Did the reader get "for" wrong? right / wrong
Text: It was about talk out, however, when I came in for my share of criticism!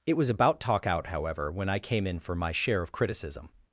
right